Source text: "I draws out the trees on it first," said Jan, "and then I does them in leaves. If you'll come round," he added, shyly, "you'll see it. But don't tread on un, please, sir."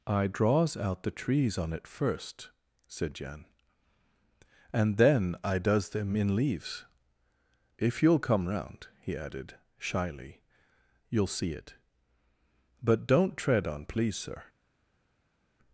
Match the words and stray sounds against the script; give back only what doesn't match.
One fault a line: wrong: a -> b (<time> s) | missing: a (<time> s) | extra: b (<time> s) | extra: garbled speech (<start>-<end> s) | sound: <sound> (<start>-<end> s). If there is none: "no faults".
missing: un (13.8 s)